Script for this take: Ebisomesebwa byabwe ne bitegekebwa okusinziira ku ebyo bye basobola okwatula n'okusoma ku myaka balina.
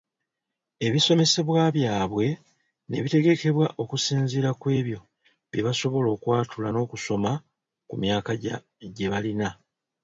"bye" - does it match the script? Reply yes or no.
yes